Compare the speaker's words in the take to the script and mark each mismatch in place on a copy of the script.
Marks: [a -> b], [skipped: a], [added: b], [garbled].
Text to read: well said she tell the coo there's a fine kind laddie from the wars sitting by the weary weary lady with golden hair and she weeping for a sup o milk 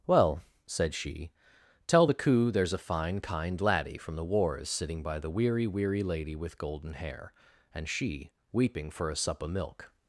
well said she tell the coo there's a fine kind laddie from the wars sitting by the weary weary lady with golden hair and she weeping for a sup o milk